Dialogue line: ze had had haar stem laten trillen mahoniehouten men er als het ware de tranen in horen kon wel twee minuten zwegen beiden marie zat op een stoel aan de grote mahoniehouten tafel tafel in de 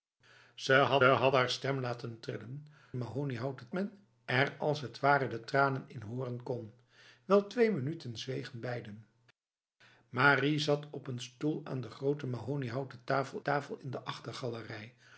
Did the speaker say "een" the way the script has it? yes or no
yes